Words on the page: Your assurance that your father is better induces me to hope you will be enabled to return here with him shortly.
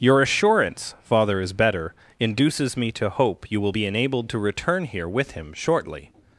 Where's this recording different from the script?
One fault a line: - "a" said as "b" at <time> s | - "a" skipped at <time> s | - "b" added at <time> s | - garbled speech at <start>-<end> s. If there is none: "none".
- "that your" skipped at 0.9 s